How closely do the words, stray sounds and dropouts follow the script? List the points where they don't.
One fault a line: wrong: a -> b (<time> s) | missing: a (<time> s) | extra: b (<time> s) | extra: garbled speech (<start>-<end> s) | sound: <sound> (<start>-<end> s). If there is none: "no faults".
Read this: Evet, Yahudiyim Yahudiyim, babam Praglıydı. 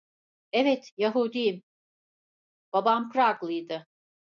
missing: Yahudiyim (1.6 s)